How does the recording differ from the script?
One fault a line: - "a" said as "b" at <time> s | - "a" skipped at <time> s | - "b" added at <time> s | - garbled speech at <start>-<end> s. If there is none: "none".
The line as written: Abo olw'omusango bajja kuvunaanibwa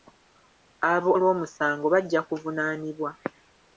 none